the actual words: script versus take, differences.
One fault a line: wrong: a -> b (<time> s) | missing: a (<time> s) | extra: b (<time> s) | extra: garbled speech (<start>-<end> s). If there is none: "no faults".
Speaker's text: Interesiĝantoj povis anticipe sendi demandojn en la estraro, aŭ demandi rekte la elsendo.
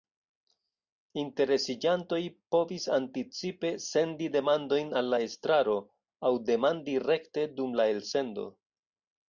wrong: en -> al (5.0 s)
extra: dum (7.6 s)